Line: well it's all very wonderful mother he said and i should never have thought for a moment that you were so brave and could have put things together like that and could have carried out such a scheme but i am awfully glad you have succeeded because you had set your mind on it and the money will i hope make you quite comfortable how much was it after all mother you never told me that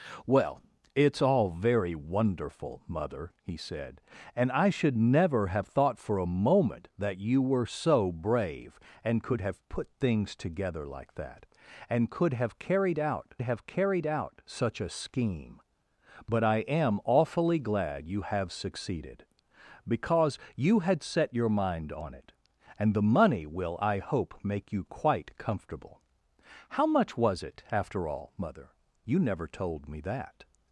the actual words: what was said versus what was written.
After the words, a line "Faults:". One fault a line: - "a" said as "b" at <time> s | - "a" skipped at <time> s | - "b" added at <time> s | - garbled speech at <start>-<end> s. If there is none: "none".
well it's all very wonderful mother he said and i should never have thought for a moment that you were so brave and could have put things together like that and could have carried out have carried out such a scheme but i am awfully glad you have succeeded because you had set your mind on it and the money will i hope make you quite comfortable how much was it after all mother you never told me that
Faults:
- "have carried out" added at 13.4 s